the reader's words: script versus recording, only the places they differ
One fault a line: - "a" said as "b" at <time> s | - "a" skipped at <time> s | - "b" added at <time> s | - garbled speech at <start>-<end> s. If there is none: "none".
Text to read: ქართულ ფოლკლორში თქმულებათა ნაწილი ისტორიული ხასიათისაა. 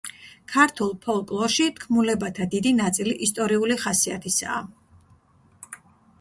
- "დიდი" added at 2.6 s